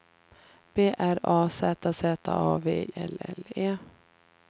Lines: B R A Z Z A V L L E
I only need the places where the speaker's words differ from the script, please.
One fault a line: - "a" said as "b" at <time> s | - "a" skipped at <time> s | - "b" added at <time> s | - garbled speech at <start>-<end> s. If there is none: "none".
none